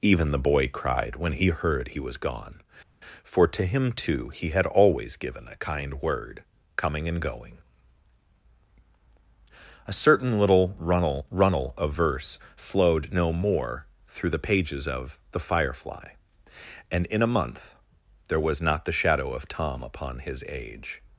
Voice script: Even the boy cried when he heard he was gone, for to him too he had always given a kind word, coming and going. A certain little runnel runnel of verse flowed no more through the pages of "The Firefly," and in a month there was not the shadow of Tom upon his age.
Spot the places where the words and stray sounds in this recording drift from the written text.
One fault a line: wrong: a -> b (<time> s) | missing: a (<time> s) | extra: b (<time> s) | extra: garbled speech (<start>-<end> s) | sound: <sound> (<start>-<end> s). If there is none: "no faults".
no faults